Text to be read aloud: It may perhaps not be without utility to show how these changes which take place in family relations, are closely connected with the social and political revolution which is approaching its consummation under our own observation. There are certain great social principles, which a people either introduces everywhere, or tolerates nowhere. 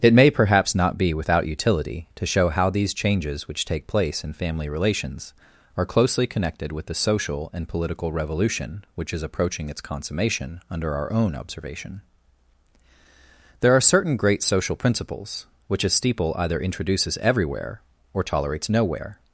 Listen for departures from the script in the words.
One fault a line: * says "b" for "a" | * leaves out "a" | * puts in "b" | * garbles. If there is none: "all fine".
* says "steeple" for "people"